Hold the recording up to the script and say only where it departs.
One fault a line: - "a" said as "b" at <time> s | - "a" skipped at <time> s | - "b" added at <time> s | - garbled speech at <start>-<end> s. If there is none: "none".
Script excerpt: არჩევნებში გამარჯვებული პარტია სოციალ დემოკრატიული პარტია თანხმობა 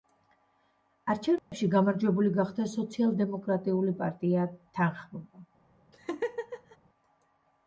- "პარტია" said as "გახდა" at 2.4 s